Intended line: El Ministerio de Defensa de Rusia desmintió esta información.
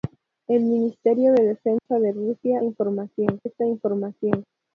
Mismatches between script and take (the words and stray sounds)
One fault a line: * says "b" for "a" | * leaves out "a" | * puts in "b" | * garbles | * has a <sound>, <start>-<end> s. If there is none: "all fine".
* has a dropout, 1.8-1.9 s
* says "información" for "desmintió"